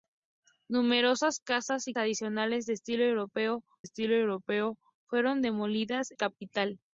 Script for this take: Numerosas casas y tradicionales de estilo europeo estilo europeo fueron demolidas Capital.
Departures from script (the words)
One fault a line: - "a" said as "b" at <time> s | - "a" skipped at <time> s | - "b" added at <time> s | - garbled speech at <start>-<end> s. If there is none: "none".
none